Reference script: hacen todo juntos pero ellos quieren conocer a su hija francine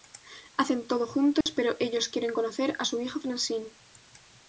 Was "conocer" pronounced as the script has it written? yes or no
yes